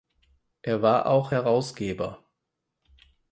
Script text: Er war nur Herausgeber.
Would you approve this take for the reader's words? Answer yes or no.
no